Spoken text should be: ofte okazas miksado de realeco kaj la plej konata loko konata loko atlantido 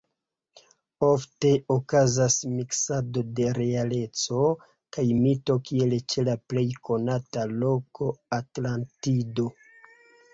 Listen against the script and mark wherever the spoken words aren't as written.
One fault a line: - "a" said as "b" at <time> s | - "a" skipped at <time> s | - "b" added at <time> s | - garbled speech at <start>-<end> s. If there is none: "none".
- "mito kiel ĉe" added at 5.2 s
- "konata loko" skipped at 8.1 s